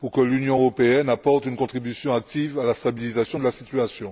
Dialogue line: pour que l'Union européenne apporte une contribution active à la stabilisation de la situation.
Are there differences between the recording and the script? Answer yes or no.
no